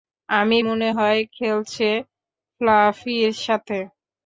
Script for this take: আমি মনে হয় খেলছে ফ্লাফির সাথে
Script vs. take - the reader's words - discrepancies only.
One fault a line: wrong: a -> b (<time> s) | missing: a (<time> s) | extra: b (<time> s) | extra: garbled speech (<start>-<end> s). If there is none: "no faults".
no faults